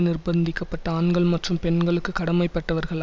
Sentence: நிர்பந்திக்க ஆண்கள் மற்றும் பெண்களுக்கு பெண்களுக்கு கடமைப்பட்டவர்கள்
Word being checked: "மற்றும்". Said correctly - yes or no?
yes